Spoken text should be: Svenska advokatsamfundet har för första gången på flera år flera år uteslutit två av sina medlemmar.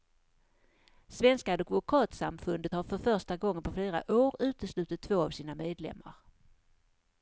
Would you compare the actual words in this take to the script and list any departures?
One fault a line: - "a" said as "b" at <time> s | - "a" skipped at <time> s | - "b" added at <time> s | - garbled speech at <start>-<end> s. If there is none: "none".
- "flera år" skipped at 4.3 s